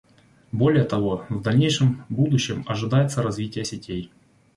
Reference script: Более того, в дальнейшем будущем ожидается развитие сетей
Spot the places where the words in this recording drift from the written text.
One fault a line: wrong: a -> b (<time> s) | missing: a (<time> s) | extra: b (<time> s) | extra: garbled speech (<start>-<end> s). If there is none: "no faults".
no faults